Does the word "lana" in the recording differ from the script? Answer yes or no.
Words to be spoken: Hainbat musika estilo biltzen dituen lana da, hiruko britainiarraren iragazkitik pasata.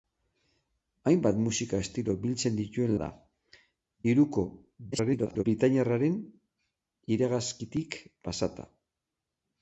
yes